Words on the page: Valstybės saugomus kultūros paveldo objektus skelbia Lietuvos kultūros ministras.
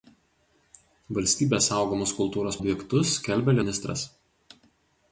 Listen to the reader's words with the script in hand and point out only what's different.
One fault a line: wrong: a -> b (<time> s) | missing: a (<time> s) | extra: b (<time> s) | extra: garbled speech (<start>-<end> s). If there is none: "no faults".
missing: paveldo (2.6 s)
missing: Lietuvos kultūros (3.6 s)